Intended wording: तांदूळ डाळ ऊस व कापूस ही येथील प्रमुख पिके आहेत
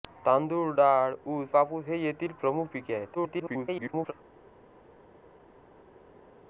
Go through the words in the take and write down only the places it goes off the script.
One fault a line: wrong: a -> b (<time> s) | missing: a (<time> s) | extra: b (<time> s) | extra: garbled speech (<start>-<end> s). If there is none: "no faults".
missing: व (1.6 s)
extra: garbled speech (3.1-4.1 s)